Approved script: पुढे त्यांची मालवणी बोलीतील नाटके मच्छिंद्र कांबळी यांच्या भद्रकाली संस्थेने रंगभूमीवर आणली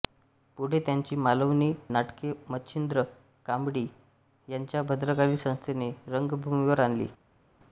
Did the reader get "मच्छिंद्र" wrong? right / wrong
right